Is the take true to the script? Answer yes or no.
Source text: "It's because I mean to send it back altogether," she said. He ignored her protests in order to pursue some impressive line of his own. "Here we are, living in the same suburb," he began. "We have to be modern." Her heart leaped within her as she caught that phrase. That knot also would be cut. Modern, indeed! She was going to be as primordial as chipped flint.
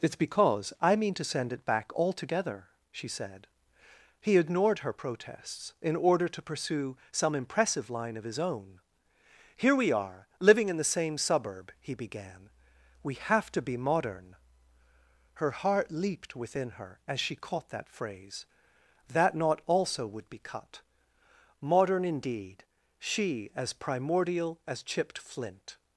no